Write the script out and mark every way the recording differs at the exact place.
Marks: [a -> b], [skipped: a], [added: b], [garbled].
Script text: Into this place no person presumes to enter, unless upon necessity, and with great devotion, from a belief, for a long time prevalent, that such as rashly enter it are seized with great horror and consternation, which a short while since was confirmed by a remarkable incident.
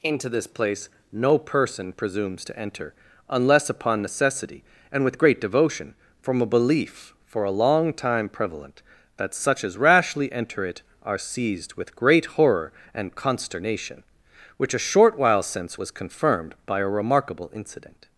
Into this place no person presumes to enter, unless upon necessity, and with great devotion, from a belief, for a long time prevalent, that such as rashly enter it are seized with great horror and consternation, which a short while since was confirmed by a remarkable incident.